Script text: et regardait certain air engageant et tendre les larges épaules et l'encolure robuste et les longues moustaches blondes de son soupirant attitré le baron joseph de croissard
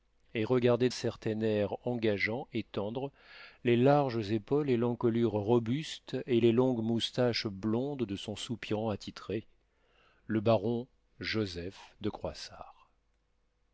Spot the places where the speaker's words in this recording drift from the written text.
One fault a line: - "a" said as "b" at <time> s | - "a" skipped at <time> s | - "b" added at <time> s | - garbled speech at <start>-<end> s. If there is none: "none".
none